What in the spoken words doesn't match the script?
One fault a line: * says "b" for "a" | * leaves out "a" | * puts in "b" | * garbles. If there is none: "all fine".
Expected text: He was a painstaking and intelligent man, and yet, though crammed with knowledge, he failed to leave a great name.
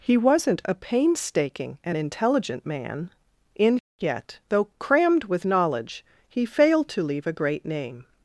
* says "wasn't" for "was"
* says "in" for "and"